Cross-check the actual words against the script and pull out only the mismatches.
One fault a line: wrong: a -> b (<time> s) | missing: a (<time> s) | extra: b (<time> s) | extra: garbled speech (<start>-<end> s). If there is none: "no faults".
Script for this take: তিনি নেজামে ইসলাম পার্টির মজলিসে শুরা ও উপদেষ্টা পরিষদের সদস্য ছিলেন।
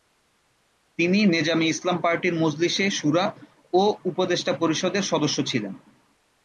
no faults